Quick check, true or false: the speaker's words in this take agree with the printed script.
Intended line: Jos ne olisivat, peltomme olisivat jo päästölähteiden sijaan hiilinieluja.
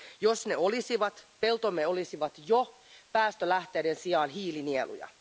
true